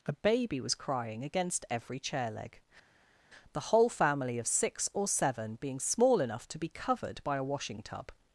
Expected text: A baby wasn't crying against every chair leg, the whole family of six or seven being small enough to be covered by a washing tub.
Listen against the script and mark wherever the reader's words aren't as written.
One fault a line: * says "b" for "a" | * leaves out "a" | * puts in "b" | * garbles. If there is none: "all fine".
* says "was" for "wasn't"